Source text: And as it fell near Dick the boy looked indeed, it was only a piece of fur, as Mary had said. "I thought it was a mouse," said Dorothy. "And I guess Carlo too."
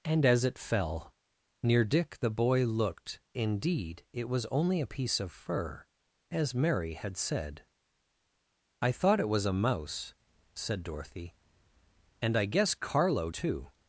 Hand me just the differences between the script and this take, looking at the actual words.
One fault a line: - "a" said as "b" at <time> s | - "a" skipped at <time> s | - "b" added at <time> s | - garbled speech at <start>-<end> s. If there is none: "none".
none